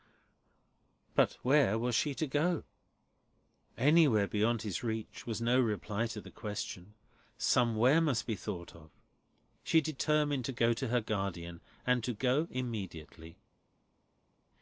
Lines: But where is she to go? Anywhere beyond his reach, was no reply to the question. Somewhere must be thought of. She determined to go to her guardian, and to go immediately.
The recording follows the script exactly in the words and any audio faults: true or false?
false